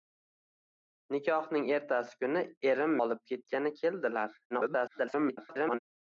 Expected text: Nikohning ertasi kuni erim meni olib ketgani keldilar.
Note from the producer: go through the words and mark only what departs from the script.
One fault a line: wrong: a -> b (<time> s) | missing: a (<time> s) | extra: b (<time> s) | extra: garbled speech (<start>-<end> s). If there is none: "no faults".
missing: meni (3.0 s)
extra: garbled speech (4.5-5.8 s)